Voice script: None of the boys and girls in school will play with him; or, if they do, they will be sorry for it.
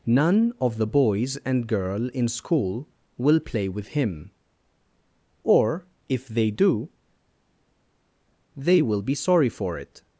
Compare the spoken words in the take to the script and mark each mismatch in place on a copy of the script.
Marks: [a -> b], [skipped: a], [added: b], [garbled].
None of the boys and [girls -> girl] in school will play with him; or, if they do, they will be sorry for it.